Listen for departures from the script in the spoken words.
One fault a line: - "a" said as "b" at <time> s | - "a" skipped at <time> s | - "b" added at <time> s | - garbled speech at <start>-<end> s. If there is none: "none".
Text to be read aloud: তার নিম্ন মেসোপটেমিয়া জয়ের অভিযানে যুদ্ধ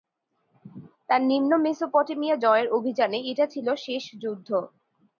- "এটা ছিল শেষ" added at 3.3 s